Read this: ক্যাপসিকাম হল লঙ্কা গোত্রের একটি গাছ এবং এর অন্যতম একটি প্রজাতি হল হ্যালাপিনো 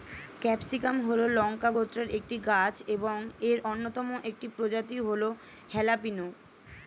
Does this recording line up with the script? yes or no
yes